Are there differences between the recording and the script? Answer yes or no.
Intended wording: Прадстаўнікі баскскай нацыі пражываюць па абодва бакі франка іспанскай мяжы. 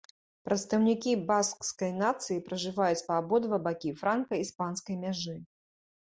no